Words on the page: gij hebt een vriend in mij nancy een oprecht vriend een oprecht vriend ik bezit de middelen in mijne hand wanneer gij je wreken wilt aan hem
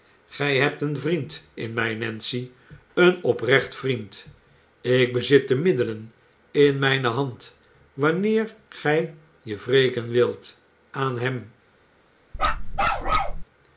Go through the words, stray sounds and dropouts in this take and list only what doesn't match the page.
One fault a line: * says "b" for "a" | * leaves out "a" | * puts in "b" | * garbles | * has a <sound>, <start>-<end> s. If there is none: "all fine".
* leaves out "een oprecht vriend"
* has a bark, 12.3-13.4 s